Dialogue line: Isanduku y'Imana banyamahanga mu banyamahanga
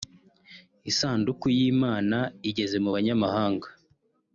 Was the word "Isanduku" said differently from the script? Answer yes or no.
no